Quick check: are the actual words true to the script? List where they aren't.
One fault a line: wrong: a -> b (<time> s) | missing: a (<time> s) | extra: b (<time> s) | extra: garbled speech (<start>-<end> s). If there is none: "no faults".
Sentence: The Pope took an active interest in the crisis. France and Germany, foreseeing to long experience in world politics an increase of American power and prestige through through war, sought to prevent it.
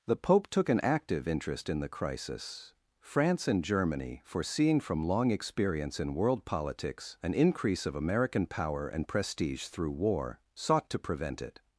wrong: to -> from (4.8 s)
missing: through (9.9 s)